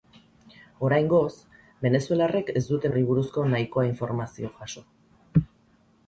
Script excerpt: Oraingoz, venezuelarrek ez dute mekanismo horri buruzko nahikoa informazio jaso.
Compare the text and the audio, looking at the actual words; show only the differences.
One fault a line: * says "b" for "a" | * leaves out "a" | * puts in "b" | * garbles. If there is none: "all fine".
* leaves out "mekanismo"